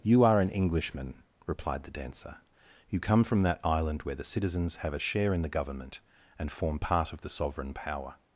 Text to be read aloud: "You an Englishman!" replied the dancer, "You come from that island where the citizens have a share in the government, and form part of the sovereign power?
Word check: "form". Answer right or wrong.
right